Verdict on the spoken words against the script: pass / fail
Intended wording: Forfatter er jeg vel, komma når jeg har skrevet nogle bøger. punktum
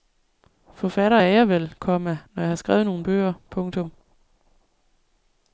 pass